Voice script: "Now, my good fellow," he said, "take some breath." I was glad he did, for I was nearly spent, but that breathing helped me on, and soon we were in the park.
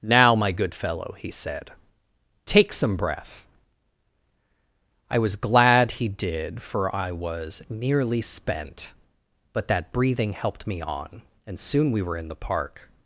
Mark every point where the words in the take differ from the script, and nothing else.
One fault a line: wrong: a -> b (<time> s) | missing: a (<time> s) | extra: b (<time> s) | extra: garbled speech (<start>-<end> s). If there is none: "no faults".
no faults